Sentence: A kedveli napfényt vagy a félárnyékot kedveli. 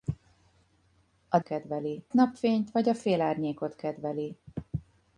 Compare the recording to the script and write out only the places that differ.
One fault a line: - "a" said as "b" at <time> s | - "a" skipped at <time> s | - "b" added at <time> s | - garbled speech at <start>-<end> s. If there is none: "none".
none